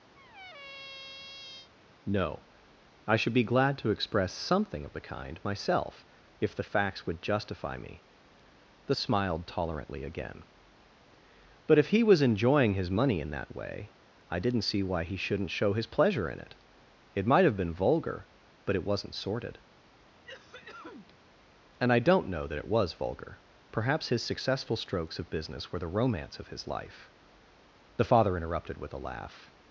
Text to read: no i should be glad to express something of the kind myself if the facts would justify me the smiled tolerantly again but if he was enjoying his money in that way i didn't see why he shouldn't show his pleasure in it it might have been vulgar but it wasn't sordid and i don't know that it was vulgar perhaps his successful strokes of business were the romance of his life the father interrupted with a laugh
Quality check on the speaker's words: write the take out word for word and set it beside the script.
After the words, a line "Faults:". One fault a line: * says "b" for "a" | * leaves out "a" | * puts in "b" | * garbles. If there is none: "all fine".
no i should be glad to express something of the kind myself if the facts would justify me the smiled tolerantly again but if he was enjoying his money in that way i didn't see why he shouldn't show his pleasure in it it might have been vulgar but it wasn't sordid and i don't know that it was vulgar perhaps his successful strokes of business were the romance of his life the father interrupted with a laugh
Faults:
all fine